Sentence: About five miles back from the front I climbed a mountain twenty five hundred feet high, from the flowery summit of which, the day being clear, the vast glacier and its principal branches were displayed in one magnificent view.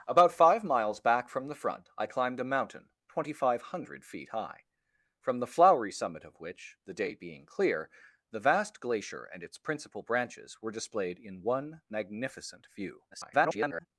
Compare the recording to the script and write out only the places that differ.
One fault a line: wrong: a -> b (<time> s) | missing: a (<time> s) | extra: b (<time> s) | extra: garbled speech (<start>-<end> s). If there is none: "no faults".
extra: garbled speech (13.1-13.9 s)